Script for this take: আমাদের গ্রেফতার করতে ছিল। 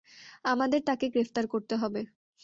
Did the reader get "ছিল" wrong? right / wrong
wrong